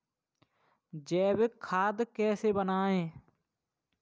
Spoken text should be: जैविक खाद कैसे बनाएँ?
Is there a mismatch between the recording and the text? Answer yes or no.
no